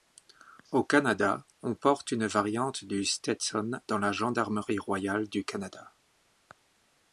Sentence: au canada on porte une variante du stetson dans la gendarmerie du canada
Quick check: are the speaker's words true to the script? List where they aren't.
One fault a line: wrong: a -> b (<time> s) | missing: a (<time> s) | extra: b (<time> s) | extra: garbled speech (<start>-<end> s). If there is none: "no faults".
extra: royale (4.8 s)